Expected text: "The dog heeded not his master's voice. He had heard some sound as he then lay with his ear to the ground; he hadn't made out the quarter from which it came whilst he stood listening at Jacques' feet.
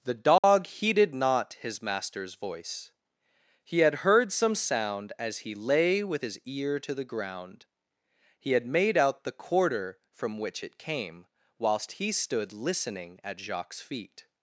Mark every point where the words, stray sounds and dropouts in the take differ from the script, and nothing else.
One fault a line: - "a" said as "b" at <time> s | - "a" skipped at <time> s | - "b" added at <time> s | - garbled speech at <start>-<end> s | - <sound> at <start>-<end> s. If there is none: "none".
- dropout at 0.4-0.4 s
- "then" skipped at 5.5 s
- "hadn't" said as "had" at 8.5 s